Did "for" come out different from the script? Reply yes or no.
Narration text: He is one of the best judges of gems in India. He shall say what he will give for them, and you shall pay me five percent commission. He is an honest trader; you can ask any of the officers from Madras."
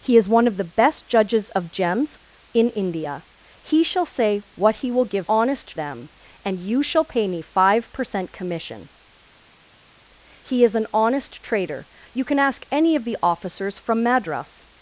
yes